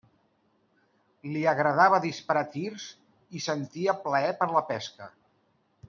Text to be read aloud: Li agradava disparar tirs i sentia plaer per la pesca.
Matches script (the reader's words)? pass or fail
pass